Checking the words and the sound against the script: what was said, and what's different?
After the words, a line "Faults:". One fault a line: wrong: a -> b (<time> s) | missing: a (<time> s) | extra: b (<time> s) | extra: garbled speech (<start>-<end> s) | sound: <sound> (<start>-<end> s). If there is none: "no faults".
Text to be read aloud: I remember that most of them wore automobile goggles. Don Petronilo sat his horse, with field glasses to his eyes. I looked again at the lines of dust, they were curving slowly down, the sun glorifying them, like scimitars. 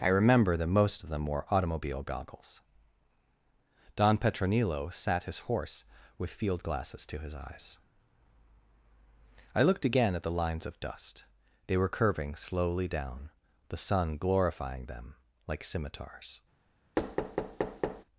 I remember that most of them wore automobile goggles. Don Petronilo sat his horse, with field glasses to his eyes. I looked again at the lines of dust, they were curving slowly down, the sun glorifying them, like scimitars.
Faults:
sound: thud (17.0-18.0 s)